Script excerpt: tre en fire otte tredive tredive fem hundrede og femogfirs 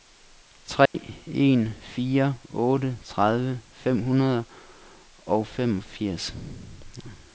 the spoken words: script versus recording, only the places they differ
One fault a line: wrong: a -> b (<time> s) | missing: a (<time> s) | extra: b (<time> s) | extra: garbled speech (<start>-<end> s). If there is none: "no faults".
missing: tredive (3.6 s)